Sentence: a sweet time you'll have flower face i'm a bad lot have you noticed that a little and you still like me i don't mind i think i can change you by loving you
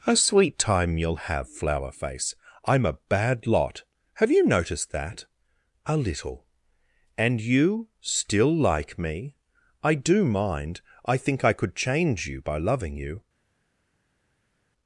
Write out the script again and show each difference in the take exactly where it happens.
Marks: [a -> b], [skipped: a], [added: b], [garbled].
a sweet time you'll have flower face i'm a bad lot have you noticed that a little and you still like me i [don't -> do] mind i think i [can -> could] change you by loving you